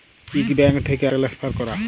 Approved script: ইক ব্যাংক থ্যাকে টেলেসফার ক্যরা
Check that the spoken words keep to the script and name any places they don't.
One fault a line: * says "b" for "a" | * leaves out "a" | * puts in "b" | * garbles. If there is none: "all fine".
all fine